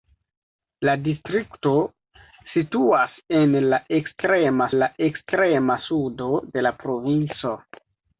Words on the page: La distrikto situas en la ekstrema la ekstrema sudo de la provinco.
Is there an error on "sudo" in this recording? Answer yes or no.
no